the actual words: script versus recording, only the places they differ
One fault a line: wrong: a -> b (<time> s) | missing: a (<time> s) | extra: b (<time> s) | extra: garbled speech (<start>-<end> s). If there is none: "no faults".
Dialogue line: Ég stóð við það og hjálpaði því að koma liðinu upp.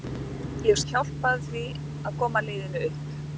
missing: stóð við það (0.8 s)